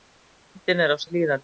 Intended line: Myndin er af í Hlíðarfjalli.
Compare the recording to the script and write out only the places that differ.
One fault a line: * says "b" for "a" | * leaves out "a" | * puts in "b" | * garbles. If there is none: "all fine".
all fine